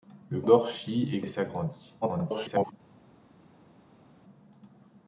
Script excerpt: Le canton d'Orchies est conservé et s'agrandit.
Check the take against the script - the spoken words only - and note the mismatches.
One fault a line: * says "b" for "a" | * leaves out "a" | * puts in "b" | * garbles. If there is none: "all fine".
* leaves out "canton"
* leaves out "conservé"
* garbles